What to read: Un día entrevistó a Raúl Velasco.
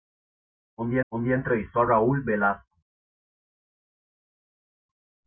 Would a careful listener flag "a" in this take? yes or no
no